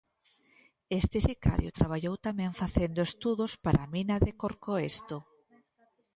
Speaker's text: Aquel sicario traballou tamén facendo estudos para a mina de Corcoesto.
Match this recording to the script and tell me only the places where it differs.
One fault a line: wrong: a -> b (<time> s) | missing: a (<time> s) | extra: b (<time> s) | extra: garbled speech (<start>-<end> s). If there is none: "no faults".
wrong: Aquel -> Este (1.0 s)